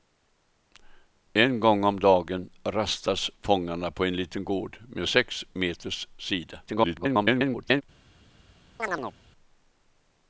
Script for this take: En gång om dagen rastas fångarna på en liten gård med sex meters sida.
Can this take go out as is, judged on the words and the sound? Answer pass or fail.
fail